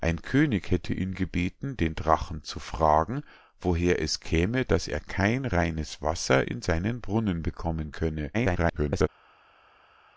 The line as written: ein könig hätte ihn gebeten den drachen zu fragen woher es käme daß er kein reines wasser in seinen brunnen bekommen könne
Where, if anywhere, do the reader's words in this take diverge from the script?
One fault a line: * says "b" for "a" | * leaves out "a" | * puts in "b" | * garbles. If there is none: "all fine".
* garbles